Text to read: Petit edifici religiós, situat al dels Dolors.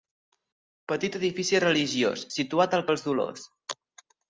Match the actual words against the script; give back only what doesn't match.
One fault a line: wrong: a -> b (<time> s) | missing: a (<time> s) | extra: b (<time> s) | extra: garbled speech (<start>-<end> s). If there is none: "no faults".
no faults